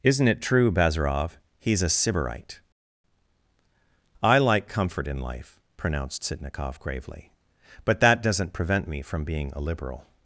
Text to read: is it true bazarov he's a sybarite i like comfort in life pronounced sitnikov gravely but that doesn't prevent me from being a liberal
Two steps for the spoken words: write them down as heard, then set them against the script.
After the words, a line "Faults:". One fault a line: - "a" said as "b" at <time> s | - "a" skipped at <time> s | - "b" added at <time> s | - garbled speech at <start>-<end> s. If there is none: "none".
isn't it true bazarov he's a sybarite i like comfort in life pronounced sitnikov gravely but that doesn't prevent me from being a liberal
Faults:
- "is" said as "isn't" at 0.0 s